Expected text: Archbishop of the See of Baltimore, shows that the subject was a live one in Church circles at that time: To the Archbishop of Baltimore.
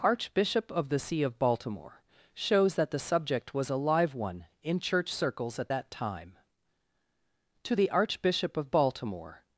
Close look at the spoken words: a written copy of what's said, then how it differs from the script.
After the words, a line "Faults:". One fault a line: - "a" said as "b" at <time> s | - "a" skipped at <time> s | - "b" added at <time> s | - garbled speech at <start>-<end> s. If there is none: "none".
Archbishop of the See of Baltimore, shows that the subject was a live one in Church circles at that time: To the Archbishop of Baltimore.
Faults:
none